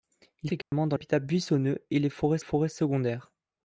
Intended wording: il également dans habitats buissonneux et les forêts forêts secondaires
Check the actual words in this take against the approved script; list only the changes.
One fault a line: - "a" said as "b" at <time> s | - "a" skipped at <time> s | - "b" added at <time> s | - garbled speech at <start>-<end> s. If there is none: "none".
none